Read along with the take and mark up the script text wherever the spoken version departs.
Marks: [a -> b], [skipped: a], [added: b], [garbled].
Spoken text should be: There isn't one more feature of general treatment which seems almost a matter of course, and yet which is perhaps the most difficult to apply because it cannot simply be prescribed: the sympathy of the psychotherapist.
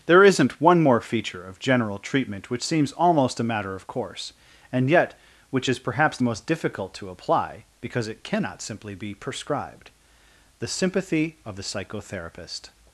There isn't one more feature of general treatment which seems almost a matter of course, and yet which is perhaps the most difficult to apply because it cannot simply be prescribed: the sympathy of the psychotherapist.